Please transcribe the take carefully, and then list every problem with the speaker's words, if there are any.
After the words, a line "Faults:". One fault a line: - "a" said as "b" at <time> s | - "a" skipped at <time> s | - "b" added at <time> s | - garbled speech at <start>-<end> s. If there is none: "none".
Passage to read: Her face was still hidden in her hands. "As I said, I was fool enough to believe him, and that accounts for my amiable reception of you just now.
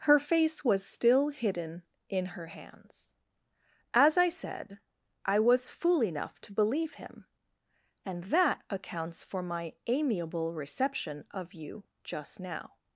Her face was still hidden in her hands. "As I said, I was fool enough to believe him, and that accounts for my amiable reception of you just now.
Faults:
none